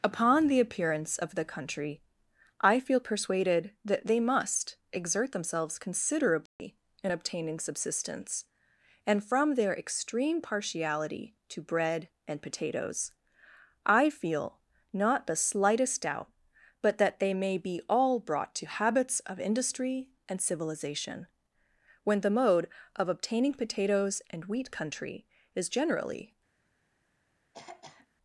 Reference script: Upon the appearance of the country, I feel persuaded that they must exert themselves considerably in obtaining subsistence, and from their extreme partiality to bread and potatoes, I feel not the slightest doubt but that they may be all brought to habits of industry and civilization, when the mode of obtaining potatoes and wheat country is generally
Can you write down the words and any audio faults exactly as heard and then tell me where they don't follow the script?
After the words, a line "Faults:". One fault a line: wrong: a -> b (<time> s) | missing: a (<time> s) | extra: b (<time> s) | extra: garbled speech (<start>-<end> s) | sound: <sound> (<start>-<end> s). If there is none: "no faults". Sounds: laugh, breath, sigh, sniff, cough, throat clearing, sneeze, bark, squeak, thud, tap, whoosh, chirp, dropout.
Upon the appearance of the country, I feel persuaded that they must exert themselves considerably in obtaining subsistence, and from their extreme partiality to bread and potatoes, I feel not the slightest doubt but that they may be all brought to habits of industry and civilization, when the mode of obtaining potatoes and wheat country is generally
Faults:
sound: dropout (6.5-6.6 s)
sound: throat clearing (27.5-28.1 s)